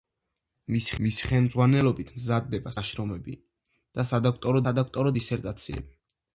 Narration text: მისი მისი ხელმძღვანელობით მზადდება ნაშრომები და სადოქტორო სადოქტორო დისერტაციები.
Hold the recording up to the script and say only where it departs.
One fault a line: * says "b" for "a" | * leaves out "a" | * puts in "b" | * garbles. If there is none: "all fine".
all fine